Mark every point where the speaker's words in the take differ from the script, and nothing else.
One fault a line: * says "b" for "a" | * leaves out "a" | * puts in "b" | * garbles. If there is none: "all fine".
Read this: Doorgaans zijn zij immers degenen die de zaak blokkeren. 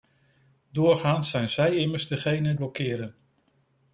* leaves out "die de zaak"